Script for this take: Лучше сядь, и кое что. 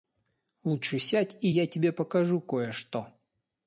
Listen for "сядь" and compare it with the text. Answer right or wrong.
right